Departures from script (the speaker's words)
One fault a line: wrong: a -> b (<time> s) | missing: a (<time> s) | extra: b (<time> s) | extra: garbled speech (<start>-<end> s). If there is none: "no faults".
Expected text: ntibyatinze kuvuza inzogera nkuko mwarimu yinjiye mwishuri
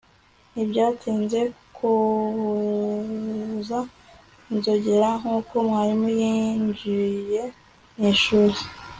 no faults